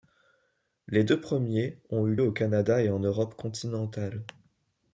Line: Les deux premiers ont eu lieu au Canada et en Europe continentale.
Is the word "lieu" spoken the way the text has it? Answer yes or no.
no